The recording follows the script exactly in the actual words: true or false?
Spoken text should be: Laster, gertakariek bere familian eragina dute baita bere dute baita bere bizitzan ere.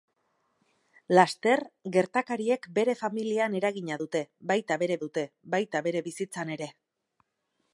true